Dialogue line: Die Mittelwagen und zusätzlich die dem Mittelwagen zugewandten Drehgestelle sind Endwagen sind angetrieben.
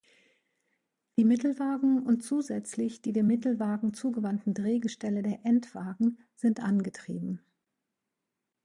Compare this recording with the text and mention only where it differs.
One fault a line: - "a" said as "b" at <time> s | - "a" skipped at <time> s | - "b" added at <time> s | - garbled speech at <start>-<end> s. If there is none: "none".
- "sind" said as "der" at 5.2 s